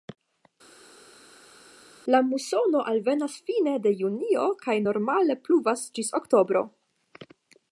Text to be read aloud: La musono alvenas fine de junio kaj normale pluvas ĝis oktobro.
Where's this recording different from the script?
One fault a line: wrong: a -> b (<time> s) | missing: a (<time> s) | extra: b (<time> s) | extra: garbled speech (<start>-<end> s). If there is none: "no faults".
no faults